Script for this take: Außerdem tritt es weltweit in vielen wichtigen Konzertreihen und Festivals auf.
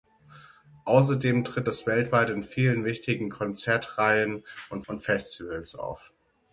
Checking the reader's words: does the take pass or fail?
fail